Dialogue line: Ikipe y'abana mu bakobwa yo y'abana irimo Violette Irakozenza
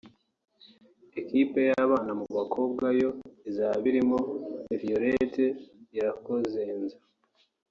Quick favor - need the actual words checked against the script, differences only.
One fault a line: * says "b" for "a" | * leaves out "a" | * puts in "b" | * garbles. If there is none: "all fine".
* says "izaba" for "y'abana"